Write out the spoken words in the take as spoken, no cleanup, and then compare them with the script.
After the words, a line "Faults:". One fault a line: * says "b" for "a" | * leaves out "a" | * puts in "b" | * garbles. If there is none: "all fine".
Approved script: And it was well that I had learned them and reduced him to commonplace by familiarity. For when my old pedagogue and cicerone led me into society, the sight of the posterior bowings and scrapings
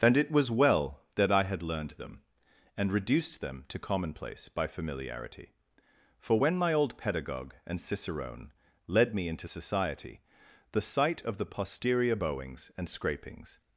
And it was well that I had learned them and reduced them to commonplace by familiarity. For when my old pedagogue and cicerone led me into society, the sight of the posterior bowings and scrapings
Faults:
* says "them" for "him"